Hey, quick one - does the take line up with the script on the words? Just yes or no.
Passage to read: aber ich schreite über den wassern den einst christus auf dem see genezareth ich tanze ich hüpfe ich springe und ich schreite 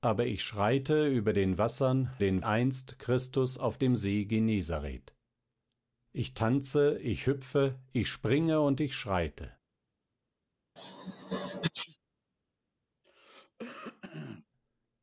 yes